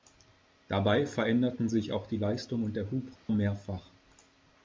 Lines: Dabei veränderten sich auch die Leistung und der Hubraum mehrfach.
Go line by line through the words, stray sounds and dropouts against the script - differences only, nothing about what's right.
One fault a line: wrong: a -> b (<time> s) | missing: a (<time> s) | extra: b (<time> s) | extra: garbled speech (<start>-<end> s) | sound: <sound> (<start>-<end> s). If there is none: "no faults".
sound: dropout (3.2-3.3 s)